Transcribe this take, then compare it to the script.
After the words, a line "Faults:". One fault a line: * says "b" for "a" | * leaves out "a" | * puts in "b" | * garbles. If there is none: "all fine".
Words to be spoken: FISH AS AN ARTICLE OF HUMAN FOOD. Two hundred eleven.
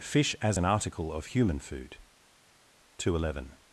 FISH AS AN ARTICLE OF HUMAN FOOD. Two hundred eleven.
Faults:
all fine